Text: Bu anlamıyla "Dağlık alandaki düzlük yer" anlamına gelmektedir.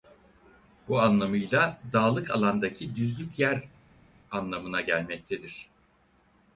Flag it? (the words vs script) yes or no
no